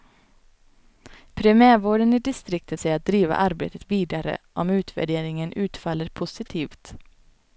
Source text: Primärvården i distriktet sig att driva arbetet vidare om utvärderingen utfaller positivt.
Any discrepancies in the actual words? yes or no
no